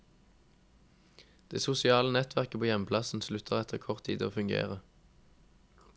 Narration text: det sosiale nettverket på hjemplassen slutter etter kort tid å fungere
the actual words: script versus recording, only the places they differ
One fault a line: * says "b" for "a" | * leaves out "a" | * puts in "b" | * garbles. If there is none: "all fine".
all fine